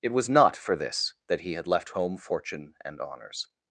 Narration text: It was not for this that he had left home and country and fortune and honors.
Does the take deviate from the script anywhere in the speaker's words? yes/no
yes